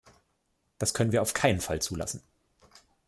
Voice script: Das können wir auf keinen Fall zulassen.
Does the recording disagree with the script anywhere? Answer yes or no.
no